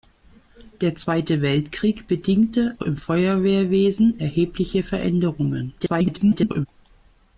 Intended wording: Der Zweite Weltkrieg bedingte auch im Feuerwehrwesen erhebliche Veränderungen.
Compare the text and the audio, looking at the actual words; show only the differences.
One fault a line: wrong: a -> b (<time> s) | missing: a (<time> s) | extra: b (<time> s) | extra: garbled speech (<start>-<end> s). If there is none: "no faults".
missing: auch (2.8 s)
extra: garbled speech (5.8-6.7 s)